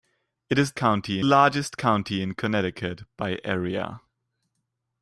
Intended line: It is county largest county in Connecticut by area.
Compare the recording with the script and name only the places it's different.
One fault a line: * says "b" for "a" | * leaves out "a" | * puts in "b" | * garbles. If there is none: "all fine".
all fine